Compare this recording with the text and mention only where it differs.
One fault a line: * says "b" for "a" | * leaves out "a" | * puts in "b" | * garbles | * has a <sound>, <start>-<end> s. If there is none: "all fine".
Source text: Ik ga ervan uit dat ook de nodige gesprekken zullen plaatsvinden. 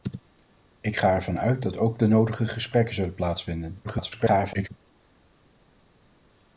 * garbles